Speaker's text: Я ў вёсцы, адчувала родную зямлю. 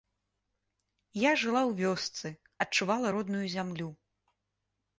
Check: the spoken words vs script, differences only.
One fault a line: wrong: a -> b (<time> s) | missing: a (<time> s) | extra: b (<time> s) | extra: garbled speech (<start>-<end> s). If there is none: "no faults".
extra: жыла (1.4 s)